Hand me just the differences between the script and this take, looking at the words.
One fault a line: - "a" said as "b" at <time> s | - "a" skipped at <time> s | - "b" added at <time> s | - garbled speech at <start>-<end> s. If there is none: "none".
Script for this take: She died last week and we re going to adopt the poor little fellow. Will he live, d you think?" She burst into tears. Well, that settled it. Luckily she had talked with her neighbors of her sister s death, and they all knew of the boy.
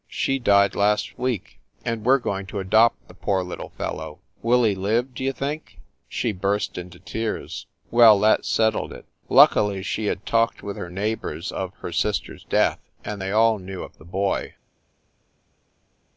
none